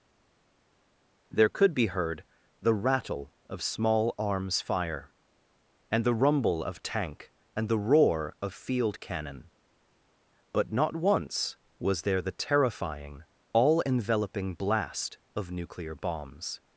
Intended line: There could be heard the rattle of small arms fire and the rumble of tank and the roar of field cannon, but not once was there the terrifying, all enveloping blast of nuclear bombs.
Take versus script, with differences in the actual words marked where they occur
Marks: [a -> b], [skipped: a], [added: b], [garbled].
There could be heard the rattle of small arms fire and the rumble of tank and the roar of field cannon, but not once was there the terrifying, all enveloping blast of nuclear bombs.